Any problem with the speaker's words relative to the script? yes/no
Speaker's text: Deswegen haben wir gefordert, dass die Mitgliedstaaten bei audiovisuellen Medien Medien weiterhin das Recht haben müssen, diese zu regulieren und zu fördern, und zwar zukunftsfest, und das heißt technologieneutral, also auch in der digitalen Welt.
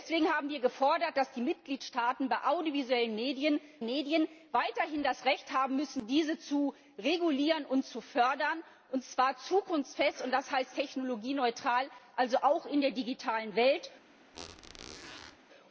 no